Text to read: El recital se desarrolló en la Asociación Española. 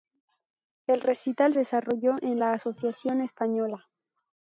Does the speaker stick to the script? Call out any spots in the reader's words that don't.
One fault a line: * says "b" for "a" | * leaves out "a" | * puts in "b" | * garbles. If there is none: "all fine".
* leaves out "se"